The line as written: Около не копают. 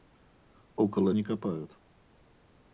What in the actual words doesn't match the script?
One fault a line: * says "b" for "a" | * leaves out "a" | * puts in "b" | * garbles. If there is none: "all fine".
all fine